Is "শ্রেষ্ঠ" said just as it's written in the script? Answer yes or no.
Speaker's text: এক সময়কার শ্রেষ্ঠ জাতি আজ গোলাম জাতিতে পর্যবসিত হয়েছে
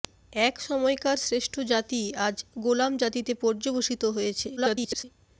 yes